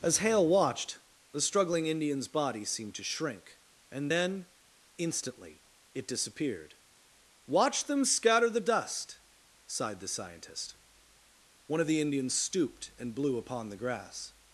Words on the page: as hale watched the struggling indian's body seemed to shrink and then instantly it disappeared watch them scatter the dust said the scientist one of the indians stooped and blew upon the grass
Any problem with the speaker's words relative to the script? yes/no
yes